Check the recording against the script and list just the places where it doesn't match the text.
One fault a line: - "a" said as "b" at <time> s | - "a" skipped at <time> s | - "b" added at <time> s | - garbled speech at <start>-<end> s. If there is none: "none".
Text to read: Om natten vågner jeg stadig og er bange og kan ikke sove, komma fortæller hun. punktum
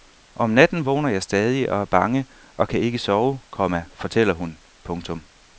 none